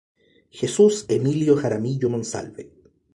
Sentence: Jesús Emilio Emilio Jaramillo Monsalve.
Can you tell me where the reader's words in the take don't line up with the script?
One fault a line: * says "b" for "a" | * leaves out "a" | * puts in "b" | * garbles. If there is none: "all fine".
* leaves out "Emilio"